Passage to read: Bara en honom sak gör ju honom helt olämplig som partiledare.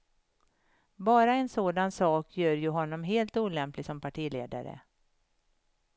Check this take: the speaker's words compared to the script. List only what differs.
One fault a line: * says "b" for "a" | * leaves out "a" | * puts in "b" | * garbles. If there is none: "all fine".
* says "sådan" for "honom"